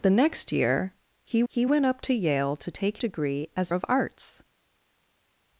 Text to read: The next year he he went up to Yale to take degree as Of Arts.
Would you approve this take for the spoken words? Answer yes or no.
yes